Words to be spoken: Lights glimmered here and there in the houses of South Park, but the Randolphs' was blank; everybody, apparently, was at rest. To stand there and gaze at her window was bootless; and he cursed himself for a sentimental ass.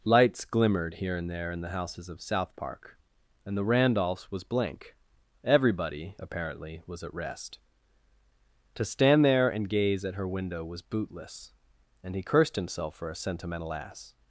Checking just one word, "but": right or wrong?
wrong